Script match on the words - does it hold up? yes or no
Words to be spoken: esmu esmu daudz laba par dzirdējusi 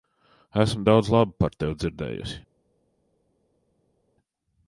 no